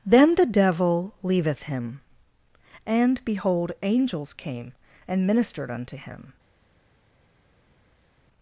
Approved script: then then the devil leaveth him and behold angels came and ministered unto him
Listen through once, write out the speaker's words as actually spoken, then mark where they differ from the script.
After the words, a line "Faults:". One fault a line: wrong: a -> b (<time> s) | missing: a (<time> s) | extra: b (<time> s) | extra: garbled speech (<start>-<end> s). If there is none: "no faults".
then the devil leaveth him and behold angels came and ministered unto him
Faults:
missing: then (0.3 s)